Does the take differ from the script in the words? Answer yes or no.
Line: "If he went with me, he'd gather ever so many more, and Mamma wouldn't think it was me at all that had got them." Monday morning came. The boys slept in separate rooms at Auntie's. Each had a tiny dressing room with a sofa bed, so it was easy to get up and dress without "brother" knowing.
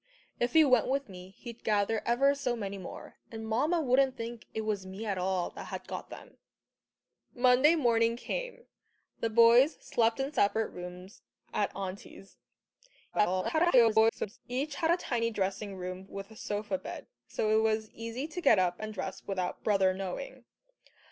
yes